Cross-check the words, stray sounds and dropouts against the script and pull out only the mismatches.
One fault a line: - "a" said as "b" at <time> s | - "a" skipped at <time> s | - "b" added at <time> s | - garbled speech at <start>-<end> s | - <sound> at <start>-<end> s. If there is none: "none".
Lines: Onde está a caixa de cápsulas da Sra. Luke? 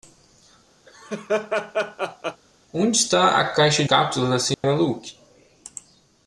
- laugh at 0.9-2.4 s
- "de" skipped at 3.8 s
- dropout at 4.5-4.6 s